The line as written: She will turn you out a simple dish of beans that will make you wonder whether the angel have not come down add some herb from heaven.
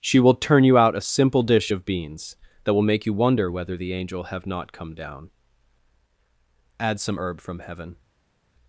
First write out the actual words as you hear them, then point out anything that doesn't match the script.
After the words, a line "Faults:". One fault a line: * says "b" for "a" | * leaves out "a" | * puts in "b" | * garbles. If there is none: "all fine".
She will turn you out a simple dish of beans that will make you wonder whether the angel have not come down add some herb from heaven.
Faults:
all fine